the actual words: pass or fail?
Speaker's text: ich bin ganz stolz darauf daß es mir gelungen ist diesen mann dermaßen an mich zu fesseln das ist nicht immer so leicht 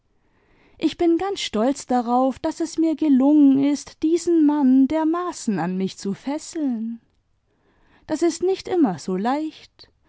pass